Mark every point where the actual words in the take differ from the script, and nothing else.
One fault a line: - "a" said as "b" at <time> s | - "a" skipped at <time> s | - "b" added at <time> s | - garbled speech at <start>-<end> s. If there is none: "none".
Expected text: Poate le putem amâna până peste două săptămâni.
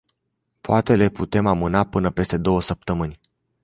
none